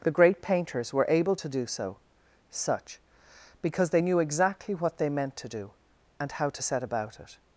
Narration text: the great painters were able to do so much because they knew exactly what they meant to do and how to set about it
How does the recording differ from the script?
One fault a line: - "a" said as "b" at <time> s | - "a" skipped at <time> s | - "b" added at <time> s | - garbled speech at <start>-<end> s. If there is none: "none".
- "much" said as "such" at 2.5 s